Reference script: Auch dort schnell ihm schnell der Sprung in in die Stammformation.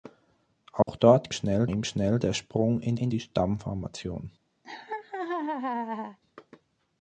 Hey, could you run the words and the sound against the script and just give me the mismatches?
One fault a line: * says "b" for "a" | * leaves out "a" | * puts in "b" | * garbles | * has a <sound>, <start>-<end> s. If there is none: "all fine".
* has a dropout, 0.8-0.9 s
* has a laugh, 4.6-6.2 s